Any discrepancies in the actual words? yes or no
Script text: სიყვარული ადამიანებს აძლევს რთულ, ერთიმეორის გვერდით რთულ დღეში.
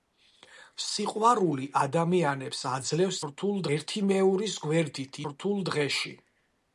no